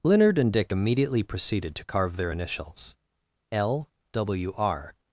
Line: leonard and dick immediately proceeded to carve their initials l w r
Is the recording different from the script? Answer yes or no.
no